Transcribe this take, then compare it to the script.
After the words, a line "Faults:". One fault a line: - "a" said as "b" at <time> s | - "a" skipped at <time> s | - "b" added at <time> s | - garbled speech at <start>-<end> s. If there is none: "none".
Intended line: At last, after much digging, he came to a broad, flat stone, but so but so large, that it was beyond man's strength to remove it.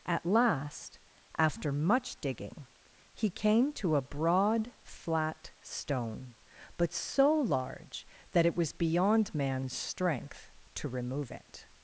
At last, after much digging, he came to a broad, flat stone, but so large, that it was beyond man's strength to remove it.
Faults:
- "but so" skipped at 7.3 s